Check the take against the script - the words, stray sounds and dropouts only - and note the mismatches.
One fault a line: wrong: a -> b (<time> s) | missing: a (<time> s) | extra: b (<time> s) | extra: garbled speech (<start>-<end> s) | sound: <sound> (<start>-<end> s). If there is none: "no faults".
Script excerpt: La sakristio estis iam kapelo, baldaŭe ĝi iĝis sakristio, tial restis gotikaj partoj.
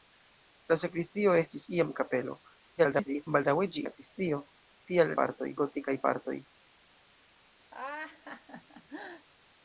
extra: garbled speech (2.8-3.3 s)
missing: iĝis (3.8 s)
wrong: restis -> partoj (5.2 s)
sound: laugh (7.7-9.3 s)